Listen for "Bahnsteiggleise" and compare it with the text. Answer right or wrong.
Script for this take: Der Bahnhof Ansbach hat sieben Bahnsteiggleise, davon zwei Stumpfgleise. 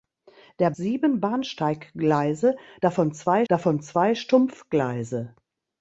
wrong